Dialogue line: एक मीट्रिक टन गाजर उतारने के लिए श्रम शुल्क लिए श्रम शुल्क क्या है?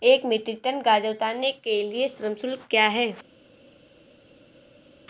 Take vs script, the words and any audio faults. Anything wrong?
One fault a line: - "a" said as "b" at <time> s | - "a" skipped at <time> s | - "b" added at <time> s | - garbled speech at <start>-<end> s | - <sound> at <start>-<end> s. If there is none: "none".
- "लिए श्रम शुल्क" skipped at 2.7 s